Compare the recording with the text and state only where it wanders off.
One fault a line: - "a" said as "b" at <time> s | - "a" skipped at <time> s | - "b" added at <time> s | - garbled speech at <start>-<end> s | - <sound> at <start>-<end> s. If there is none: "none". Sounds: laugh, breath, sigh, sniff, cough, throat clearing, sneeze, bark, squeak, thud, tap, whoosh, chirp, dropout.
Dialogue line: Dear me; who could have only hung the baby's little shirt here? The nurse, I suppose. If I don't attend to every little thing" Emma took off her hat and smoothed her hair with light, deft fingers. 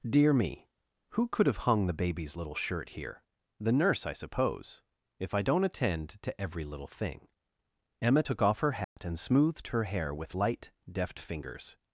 - "only" skipped at 1.7 s
- dropout at 8.8-9.0 s